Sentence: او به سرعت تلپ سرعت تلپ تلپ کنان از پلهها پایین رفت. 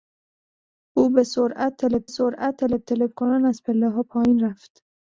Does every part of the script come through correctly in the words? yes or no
yes